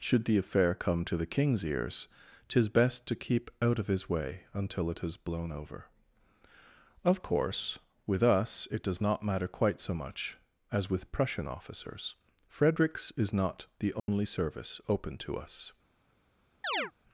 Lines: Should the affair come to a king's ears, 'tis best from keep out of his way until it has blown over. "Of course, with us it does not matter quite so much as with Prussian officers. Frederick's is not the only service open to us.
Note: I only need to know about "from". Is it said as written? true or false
false